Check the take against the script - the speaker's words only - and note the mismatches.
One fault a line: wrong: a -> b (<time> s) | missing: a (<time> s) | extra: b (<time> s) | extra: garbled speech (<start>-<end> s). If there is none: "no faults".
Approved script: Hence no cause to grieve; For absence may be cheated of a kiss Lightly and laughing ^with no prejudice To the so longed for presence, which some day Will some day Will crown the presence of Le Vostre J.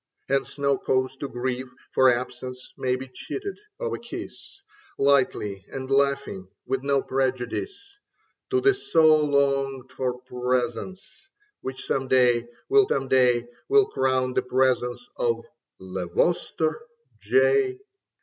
no faults